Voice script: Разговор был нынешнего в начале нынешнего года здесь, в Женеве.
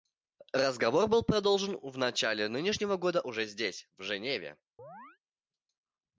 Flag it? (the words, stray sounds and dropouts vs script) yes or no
yes